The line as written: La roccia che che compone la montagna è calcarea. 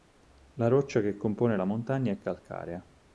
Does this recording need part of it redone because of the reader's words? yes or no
yes